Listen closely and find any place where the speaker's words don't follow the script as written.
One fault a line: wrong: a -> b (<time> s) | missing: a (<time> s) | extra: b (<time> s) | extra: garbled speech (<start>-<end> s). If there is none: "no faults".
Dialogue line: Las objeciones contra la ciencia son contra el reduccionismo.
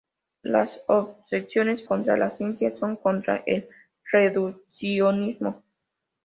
no faults